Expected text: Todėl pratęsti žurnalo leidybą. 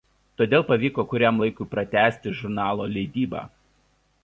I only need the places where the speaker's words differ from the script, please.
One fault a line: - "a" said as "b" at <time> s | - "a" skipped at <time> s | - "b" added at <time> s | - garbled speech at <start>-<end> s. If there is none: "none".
- "pavyko kuriam laikui" added at 0.7 s